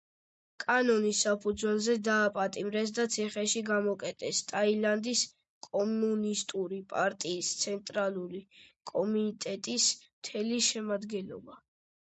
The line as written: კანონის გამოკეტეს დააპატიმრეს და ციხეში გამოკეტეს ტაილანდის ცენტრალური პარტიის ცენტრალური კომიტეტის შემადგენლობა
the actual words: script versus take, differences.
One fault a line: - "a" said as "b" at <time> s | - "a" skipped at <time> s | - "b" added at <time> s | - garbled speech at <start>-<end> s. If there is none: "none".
- "გამოკეტეს" said as "საფუძველზე" at 1.2 s
- "ცენტრალური" said as "კომუნისტური" at 5.7 s
- "მთელი" added at 10.1 s